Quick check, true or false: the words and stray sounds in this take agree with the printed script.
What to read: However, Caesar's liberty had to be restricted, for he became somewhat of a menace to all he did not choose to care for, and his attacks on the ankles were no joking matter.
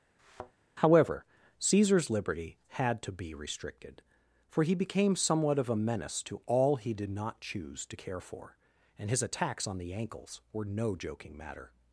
false